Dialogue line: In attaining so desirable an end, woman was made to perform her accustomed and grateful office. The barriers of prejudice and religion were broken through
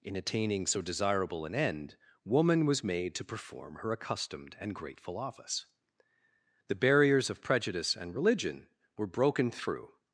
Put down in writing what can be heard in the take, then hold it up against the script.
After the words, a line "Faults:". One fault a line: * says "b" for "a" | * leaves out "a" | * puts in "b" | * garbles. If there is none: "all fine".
In attaining so desirable an end, woman was made to perform her accustomed and grateful office. The barriers of prejudice and religion were broken through
Faults:
all fine